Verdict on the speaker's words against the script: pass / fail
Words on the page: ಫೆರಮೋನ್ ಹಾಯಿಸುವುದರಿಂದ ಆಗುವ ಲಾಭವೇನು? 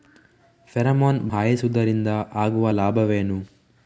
pass